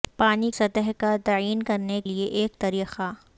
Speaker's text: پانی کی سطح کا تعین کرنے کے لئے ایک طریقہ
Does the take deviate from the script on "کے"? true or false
true